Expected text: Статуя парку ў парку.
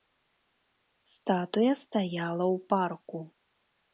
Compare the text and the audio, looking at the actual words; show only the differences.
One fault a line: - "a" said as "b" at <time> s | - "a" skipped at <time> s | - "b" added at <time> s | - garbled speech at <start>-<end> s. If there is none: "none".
- "парку" said as "стаяла" at 1.8 s